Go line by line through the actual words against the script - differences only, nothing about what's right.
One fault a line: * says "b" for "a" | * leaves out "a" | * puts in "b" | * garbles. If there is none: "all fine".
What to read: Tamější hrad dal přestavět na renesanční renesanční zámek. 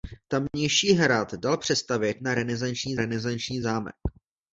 all fine